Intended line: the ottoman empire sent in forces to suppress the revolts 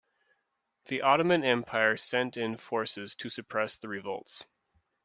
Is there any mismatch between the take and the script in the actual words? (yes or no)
no